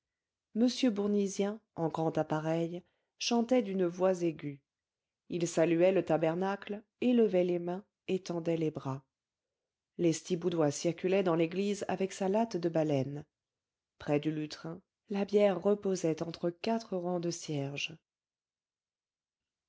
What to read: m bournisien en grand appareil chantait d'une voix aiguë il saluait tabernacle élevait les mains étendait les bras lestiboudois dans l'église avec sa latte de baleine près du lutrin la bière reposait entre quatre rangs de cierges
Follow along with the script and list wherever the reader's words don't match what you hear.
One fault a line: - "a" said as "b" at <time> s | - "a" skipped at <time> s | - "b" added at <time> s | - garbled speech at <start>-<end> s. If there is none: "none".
- "le" added at 5.9 s
- "circulait" added at 10.7 s